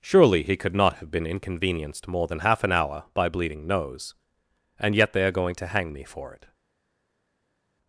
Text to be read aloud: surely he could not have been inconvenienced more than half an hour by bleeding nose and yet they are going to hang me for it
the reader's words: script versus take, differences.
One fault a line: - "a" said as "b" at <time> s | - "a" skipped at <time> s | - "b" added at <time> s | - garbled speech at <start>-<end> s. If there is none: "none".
none